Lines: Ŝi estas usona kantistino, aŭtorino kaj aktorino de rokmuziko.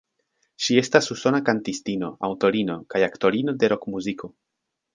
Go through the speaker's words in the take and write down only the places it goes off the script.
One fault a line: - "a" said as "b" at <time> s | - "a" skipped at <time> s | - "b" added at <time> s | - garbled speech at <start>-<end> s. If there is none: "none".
none